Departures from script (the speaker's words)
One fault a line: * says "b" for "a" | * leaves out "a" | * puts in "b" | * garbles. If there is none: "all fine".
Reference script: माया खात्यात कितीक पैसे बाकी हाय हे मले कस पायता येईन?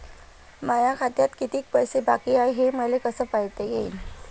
all fine